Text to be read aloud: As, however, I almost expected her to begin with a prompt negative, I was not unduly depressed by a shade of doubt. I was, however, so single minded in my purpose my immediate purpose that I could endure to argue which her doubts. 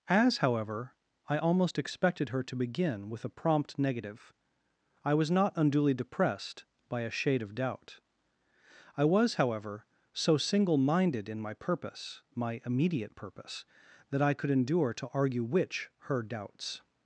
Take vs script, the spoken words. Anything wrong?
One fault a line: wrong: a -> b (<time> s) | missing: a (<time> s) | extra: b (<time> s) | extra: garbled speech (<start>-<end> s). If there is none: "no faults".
no faults